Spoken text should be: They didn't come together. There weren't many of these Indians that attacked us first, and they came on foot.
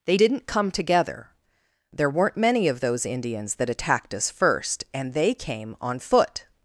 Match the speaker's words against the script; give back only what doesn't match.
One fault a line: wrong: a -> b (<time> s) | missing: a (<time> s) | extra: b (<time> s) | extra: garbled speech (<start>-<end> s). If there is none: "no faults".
wrong: these -> those (2.8 s)